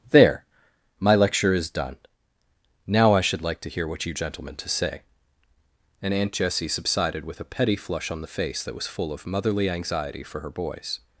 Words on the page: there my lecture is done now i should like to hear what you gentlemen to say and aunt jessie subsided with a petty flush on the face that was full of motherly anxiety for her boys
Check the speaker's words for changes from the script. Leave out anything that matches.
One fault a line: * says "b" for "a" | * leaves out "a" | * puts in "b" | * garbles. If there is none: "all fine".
all fine